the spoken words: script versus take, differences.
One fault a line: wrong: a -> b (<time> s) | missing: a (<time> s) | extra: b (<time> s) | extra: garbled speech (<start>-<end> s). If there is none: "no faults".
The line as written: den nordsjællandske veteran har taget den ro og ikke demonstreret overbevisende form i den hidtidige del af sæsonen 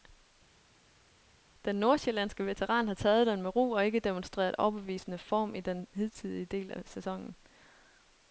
extra: med (3.4 s)